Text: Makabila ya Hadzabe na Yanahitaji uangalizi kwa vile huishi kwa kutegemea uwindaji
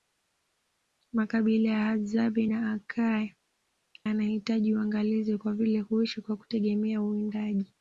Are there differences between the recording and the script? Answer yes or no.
no